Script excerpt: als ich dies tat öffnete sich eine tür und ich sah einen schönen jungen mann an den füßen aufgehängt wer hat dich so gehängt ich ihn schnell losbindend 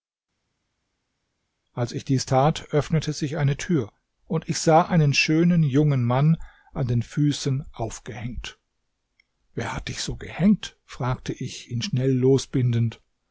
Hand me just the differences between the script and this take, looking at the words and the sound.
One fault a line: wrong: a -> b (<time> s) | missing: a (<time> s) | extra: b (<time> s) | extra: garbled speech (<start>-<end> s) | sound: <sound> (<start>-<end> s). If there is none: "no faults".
extra: fragte (10.9 s)